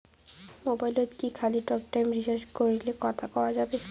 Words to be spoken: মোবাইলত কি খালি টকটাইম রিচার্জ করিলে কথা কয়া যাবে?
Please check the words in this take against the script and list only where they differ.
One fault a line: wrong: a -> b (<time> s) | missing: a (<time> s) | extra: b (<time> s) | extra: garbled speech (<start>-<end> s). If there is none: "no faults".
no faults